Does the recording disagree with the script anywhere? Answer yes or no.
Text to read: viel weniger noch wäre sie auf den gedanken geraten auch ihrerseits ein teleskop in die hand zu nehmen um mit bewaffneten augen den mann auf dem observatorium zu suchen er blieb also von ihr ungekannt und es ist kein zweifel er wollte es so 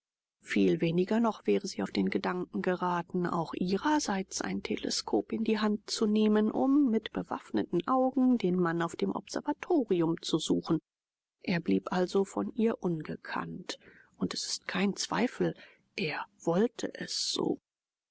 no